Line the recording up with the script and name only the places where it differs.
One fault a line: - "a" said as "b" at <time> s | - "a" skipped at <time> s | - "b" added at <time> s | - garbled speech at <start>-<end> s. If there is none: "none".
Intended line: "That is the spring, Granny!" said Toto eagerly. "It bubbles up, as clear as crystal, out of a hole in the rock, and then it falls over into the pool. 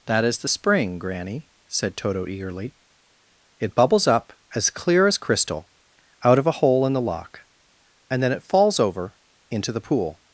- "rock" said as "lock" at 7.0 s